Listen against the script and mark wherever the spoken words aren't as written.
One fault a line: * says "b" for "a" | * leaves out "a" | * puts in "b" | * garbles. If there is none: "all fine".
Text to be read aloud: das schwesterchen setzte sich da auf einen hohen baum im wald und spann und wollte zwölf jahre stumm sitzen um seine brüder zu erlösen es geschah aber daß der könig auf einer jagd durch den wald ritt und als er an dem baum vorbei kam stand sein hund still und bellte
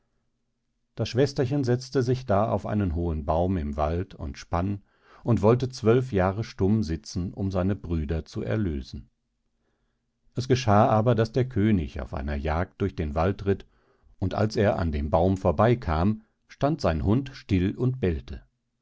all fine